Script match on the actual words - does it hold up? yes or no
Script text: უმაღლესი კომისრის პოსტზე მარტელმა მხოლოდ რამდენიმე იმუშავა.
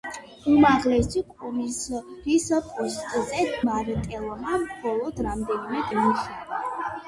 yes